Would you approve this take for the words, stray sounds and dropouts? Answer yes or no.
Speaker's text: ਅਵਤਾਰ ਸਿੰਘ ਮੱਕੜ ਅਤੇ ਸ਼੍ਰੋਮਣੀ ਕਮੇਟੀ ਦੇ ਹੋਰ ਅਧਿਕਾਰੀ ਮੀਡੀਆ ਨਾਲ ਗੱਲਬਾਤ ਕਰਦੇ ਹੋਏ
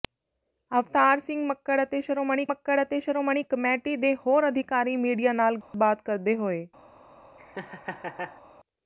no